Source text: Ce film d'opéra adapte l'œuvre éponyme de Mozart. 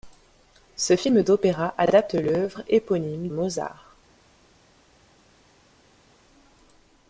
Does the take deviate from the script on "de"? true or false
true